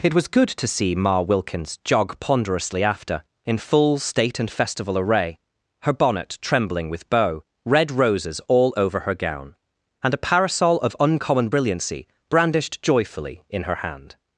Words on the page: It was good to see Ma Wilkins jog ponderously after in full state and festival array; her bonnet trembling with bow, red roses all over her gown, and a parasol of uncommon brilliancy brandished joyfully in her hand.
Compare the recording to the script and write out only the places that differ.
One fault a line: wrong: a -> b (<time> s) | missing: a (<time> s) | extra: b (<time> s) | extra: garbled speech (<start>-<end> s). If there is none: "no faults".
no faults